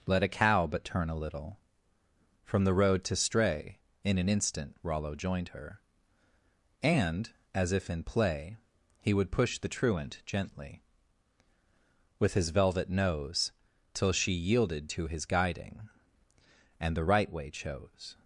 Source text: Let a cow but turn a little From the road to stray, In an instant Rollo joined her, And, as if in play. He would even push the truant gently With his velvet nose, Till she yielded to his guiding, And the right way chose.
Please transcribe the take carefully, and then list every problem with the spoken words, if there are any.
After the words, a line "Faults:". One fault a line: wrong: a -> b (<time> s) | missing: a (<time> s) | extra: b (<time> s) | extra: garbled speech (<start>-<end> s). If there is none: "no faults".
Let a cow but turn a little From the road to stray, In an instant Rollo joined her, And, as if in play. He would push the truant gently With his velvet nose, Till she yielded to his guiding, And the right way chose.
Faults:
missing: even (9.3 s)